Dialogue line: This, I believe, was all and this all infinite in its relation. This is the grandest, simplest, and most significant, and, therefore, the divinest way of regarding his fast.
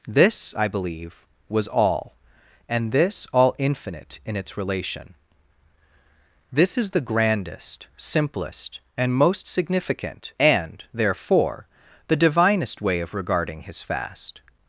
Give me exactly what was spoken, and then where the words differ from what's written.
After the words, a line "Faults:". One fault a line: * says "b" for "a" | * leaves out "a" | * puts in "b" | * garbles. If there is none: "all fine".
This, I believe, was all and this all infinite in its relation. This is the grandest, simplest, and most significant, and, therefore, the divinest way of regarding his fast.
Faults:
all fine